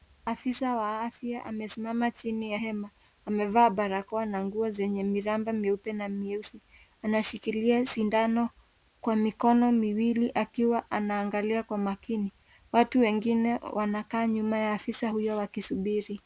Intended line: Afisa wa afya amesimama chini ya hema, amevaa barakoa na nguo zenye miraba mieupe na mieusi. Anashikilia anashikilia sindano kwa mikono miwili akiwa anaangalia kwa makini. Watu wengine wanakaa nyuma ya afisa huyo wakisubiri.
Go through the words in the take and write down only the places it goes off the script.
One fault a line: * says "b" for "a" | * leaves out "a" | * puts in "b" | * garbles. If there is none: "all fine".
* leaves out "anashikilia"